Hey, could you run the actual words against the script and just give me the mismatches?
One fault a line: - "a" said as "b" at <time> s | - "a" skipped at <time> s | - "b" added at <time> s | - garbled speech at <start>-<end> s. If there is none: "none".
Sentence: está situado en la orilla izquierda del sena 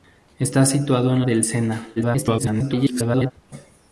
- "la orilla izquierda" skipped at 1.2 s
- garbled speech at 2.0-3.3 s